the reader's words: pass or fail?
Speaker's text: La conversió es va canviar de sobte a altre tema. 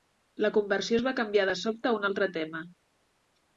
fail